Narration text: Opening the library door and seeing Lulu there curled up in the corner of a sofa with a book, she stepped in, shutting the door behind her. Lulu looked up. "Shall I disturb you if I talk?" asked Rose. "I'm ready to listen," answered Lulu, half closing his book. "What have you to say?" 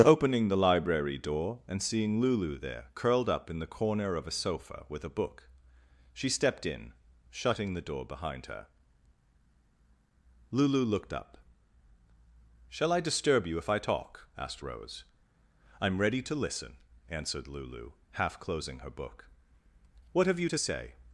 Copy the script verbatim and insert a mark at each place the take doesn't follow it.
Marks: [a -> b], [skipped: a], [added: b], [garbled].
Opening the library door and seeing Lulu there curled up in the corner of a sofa with a book, she stepped in, shutting the door behind her. Lulu looked up. "Shall I disturb you if I talk?" asked Rose. "I'm ready to listen," answered Lulu, half closing [his -> her] book. "What have you to say?"